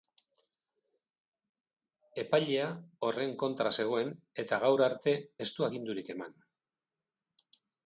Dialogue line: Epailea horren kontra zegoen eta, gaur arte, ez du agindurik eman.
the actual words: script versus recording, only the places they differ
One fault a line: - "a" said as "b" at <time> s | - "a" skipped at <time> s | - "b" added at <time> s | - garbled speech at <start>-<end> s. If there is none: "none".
none